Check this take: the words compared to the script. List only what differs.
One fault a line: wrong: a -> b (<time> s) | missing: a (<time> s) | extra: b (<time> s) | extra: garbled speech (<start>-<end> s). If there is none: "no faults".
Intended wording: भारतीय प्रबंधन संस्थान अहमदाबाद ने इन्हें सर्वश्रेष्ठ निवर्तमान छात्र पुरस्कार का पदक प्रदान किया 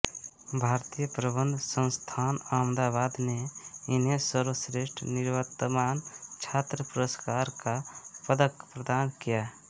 no faults